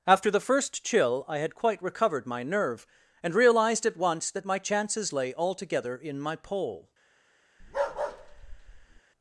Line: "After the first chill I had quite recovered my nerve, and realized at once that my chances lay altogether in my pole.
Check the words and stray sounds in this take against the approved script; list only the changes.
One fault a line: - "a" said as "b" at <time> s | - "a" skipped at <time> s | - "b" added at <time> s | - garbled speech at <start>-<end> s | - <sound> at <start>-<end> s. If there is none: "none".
- bark at 7.6-9.0 s